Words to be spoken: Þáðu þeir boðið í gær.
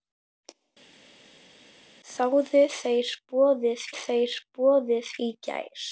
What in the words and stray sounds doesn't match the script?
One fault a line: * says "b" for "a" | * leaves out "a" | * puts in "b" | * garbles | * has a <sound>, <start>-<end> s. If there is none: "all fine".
* puts in "þeir boðið"